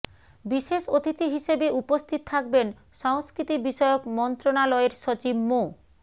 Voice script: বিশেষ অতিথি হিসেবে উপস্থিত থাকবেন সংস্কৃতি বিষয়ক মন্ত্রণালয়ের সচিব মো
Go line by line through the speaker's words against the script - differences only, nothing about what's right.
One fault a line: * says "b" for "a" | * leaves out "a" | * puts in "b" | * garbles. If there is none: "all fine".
all fine